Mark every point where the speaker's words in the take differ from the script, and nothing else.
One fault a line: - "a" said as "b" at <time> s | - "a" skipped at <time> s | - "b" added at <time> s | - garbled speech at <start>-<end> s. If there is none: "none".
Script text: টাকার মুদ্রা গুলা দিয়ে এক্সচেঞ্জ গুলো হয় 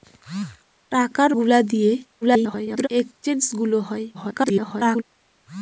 - "মুদ্রা" skipped at 1.3 s
- garbled speech at 2.2-2.9 s
- garbled speech at 4.1-5.0 s